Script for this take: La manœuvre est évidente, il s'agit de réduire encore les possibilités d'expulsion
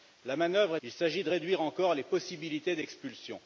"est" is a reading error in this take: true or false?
true